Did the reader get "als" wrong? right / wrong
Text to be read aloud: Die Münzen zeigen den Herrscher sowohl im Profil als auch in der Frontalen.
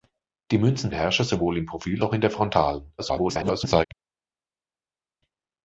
wrong